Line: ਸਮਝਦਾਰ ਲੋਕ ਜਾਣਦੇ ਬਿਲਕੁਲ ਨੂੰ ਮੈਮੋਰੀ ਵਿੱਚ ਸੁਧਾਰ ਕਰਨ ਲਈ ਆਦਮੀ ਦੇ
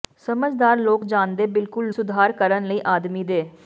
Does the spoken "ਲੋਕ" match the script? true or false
true